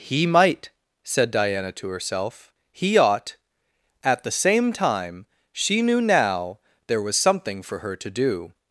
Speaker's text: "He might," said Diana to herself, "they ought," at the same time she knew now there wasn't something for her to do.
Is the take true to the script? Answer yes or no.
no